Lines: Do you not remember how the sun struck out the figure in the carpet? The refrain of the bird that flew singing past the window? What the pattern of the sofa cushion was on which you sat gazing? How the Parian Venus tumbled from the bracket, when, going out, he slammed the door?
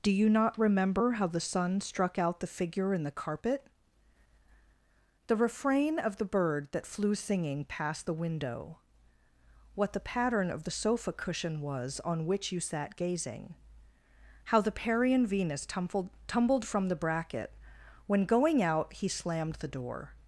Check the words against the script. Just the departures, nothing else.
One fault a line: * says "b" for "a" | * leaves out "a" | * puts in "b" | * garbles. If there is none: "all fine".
* puts in "tumbled"